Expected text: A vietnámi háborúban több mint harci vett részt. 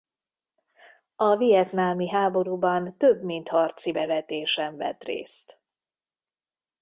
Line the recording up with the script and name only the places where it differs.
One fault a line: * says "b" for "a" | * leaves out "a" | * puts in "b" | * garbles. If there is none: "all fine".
* puts in "bevetésen"